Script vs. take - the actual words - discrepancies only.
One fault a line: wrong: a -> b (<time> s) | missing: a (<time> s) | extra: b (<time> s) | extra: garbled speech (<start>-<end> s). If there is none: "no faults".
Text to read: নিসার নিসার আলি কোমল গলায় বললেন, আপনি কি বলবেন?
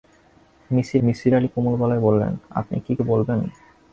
no faults